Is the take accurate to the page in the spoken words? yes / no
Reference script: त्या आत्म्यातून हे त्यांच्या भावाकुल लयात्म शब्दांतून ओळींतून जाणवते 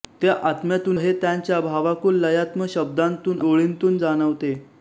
yes